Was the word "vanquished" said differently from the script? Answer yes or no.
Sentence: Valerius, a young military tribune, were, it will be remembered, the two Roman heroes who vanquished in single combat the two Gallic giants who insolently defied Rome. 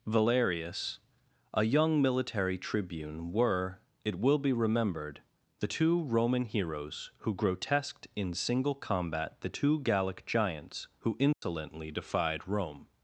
yes